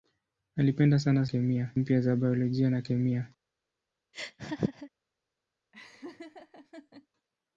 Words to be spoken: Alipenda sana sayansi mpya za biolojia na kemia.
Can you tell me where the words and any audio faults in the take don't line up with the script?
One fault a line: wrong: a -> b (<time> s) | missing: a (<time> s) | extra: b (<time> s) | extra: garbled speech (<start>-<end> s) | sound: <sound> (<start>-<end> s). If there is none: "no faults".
wrong: sayansi -> kemia (1.2 s)
sound: laugh (4.1-4.9 s)
sound: laugh (5.7-7.1 s)